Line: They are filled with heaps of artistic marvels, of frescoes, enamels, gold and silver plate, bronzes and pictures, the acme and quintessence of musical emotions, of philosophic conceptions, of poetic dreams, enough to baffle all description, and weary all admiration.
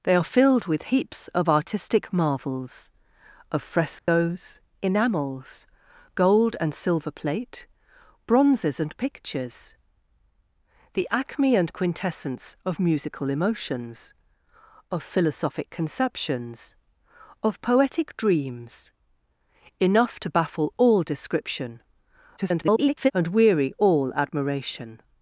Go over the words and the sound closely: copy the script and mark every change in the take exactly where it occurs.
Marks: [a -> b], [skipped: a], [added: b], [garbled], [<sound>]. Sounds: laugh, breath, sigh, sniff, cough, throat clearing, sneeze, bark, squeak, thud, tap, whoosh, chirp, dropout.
They are filled with heaps of artistic marvels, of frescoes, [dropout] enamels, gold and silver plate, bronzes and pictures, the acme and quintessence of musical emotions, of philosophic conceptions, of poetic dreams, enough to baffle all description, [garbled] and weary all admiration.